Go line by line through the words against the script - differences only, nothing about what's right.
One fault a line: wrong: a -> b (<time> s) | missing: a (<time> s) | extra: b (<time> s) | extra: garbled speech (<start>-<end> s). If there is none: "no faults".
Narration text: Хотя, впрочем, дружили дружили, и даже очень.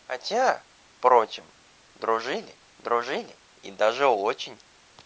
no faults